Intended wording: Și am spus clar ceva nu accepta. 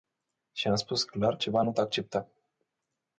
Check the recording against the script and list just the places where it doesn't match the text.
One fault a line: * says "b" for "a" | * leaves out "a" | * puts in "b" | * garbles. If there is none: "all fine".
all fine